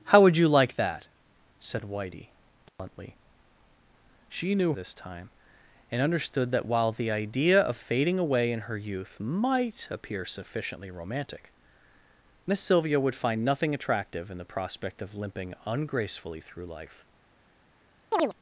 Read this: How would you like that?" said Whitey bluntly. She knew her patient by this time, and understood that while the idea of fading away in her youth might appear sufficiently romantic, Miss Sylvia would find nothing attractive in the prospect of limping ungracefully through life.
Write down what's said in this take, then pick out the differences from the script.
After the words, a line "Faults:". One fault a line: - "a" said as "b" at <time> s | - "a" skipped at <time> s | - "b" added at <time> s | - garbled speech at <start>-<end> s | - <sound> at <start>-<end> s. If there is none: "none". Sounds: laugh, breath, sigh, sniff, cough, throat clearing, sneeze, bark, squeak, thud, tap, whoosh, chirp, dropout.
How would you like that?" said Whitey bluntly. She knew this time, and understood that while the idea of fading away in her youth might appear sufficiently romantic, Miss Sylvia would find nothing attractive in the prospect of limping ungracefully through life.
Faults:
- dropout at 2.7-2.8 s
- "her patient by" skipped at 4.7 s
- chirp at 18.1-18.3 s